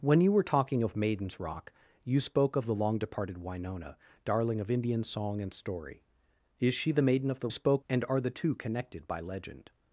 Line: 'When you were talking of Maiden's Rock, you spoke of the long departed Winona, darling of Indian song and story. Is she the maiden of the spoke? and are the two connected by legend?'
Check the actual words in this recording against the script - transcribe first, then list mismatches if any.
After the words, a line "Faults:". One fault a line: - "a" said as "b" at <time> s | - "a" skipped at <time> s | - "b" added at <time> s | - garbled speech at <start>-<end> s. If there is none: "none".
'When you were talking of Maiden's Rock, you spoke of the long departed Winona, darling of Indian song and story. Is she the maiden of the spoke? and are the two connected by legend?'
Faults:
none